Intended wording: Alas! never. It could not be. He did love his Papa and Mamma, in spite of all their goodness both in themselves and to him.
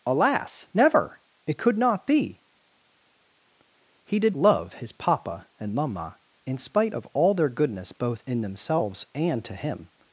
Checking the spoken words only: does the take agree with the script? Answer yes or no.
yes